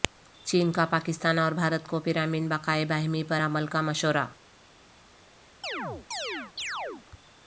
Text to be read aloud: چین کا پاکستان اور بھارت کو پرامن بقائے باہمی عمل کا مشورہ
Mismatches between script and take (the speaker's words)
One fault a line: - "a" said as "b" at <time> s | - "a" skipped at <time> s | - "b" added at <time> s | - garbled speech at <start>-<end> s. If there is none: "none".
- "پر" added at 3.2 s